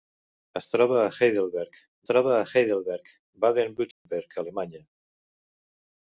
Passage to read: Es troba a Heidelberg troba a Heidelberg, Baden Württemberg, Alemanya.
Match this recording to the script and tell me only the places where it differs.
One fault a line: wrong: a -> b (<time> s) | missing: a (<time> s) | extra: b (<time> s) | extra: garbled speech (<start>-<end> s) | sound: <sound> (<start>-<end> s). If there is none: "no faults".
sound: dropout (3.9-4.1 s)